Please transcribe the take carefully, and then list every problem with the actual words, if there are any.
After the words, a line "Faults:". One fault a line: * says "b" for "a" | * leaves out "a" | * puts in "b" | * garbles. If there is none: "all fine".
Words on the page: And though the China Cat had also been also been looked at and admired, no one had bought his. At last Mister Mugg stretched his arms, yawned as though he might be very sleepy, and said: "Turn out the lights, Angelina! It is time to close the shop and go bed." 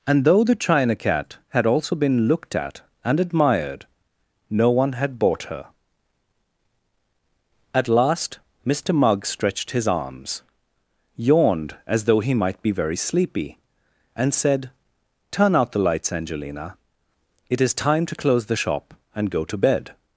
And though the China Cat had also been looked at and admired, no one had bought her. At last Mister Mugg stretched his arms, yawned as though he might be very sleepy, and said: "Turn out the lights, Angelina! It is time to close the shop and go to bed."
Faults:
* leaves out "also been"
* says "her" for "his"
* puts in "to"